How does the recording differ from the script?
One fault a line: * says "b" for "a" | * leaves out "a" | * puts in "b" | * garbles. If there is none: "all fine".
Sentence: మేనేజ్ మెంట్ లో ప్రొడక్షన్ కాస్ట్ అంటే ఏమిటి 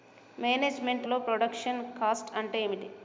all fine